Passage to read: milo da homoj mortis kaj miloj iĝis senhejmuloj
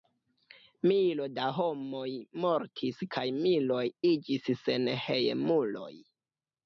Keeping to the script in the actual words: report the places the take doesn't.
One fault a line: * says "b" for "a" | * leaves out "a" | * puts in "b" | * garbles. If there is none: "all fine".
all fine